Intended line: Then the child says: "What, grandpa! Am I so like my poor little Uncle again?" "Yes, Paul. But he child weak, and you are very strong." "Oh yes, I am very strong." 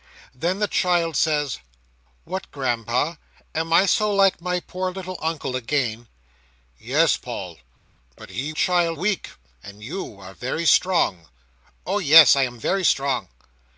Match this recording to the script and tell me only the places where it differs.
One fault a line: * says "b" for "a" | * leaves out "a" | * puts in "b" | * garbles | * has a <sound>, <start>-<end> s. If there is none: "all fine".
all fine